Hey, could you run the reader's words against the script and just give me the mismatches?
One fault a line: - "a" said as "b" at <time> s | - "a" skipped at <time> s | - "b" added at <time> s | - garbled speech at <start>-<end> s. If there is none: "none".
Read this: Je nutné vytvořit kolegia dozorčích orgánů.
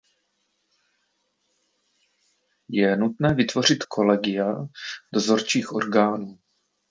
none